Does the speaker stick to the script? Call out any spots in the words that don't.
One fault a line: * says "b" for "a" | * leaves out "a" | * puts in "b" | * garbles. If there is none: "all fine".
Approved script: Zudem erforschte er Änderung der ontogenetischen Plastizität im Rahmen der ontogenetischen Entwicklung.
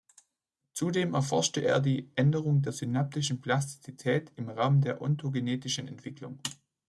* puts in "die"
* says "synaptischen" for "ontogenetischen"